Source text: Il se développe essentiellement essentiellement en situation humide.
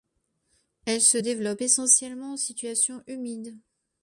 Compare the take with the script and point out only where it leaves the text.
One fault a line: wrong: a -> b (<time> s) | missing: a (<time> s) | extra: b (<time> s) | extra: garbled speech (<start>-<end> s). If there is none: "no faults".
wrong: Il -> Elle (0.8 s)
missing: essentiellement (2.3 s)